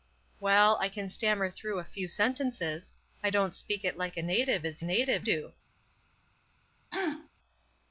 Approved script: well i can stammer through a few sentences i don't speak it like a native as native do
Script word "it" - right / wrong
right